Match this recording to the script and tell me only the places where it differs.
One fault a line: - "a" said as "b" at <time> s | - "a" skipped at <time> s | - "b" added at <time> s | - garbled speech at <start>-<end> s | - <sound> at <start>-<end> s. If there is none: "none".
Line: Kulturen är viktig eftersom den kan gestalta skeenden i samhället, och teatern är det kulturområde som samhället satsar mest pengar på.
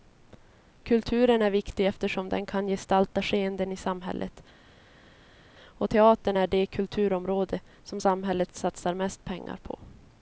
none